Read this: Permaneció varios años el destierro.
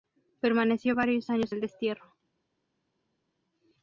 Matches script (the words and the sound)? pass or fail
pass